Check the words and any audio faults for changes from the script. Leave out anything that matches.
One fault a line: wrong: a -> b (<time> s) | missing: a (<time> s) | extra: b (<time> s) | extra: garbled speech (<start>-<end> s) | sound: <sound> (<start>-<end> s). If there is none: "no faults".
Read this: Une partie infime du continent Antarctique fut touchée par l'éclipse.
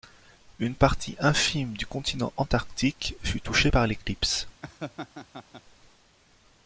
sound: laugh (4.6-5.6 s)